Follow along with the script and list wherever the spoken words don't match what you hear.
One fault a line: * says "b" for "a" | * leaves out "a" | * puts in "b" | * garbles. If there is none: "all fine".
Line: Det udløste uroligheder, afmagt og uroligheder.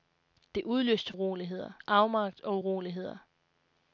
all fine